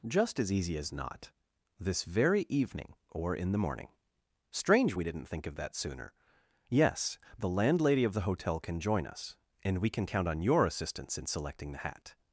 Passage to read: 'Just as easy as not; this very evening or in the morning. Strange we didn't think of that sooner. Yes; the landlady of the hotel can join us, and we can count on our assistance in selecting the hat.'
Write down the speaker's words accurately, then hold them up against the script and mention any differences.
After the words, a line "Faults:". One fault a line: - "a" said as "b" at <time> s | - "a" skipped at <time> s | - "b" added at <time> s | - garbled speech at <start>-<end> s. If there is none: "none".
'Just as easy as not; this very evening or in the morning. Strange we didn't think of that sooner. Yes; the landlady of the hotel can join us, and we can count on your assistance in selecting the hat.'
Faults:
- "our" said as "your" at 10.4 s